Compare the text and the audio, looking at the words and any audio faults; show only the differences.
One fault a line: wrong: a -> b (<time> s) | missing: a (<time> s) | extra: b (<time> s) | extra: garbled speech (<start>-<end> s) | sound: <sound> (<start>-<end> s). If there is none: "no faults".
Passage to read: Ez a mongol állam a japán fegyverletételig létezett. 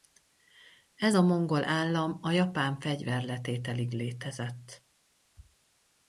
no faults